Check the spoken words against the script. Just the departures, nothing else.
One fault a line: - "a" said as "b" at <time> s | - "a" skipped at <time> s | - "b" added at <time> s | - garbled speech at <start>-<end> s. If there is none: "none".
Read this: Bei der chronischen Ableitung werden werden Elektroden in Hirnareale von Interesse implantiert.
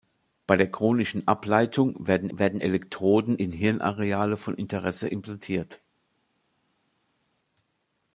none